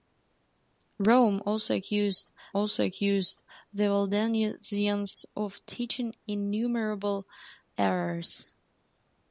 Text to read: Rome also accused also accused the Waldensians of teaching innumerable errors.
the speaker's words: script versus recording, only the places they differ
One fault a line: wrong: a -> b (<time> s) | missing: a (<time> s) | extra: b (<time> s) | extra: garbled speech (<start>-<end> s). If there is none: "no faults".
no faults